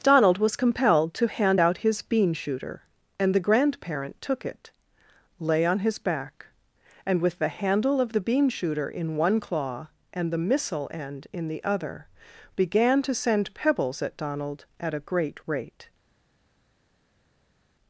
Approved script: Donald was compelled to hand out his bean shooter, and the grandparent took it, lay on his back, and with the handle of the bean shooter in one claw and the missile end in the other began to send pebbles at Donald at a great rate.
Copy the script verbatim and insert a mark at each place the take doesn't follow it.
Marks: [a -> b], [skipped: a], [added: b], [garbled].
Donald was compelled to hand out his bean shooter, and the grandparent took it, lay on his back, and with the handle of the bean shooter in one claw and the missile end in the other began to send pebbles at Donald at a great rate.